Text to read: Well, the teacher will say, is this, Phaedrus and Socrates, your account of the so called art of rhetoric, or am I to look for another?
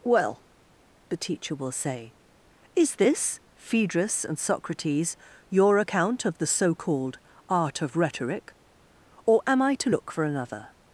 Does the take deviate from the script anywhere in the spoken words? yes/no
no